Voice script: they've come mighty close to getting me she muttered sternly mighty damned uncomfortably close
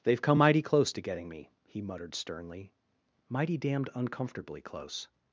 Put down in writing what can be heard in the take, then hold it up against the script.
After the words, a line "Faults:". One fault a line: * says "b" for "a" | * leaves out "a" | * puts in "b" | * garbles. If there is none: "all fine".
they've come mighty close to getting me he muttered sternly mighty damned uncomfortably close
Faults:
* says "he" for "she"